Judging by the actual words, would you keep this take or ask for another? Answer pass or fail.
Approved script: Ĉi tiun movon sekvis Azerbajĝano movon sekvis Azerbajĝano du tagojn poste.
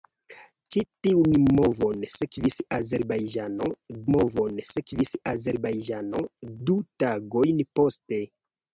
pass